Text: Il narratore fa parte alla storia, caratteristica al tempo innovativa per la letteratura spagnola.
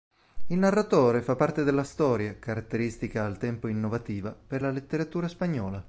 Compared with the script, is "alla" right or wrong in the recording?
wrong